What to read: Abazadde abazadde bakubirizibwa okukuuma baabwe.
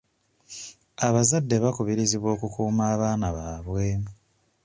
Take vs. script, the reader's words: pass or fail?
fail